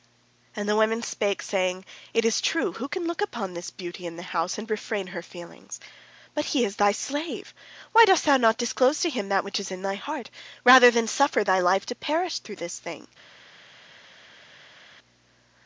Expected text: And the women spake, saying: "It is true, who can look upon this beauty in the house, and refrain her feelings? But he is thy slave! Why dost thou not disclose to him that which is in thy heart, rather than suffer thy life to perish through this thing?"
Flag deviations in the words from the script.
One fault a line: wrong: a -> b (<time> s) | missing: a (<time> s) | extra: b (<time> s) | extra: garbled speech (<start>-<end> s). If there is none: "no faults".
no faults